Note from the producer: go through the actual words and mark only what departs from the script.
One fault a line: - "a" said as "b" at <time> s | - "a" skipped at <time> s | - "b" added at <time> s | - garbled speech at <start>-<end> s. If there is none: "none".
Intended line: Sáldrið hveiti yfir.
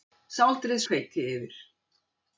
none